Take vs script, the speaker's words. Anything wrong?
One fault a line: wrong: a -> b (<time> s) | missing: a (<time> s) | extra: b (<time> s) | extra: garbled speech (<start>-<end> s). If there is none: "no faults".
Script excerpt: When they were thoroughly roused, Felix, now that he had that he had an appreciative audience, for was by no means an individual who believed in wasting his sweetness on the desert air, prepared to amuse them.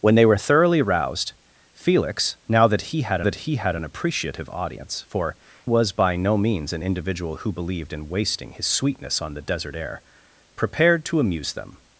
no faults